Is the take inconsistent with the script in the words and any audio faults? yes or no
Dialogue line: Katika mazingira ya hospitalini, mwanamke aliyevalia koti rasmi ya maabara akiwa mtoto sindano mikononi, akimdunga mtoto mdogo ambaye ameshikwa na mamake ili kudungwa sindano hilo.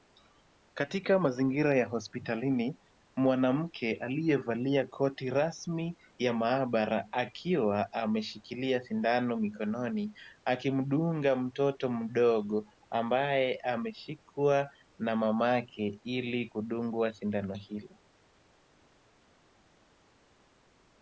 yes